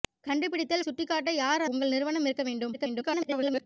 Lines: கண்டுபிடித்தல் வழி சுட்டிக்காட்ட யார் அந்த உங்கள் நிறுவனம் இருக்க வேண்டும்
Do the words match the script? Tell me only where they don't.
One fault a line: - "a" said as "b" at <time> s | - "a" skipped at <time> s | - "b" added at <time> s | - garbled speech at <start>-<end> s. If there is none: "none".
- "வழி" skipped at 0.8 s
- "அந்த" skipped at 1.6 s
- garbled speech at 2.7-3.7 s